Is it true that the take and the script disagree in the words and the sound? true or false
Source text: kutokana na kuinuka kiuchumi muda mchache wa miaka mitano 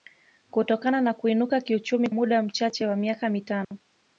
true